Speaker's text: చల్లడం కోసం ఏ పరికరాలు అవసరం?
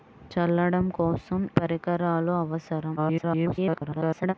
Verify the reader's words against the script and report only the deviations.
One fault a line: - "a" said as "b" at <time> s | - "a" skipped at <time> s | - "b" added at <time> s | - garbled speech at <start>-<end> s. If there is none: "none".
- "ఏ" skipped at 1.4 s
- garbled speech at 3.0-4.3 s